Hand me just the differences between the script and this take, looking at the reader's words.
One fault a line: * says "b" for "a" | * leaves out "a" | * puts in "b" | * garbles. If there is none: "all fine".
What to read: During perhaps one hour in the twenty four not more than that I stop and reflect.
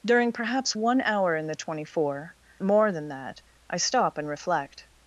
* leaves out "not"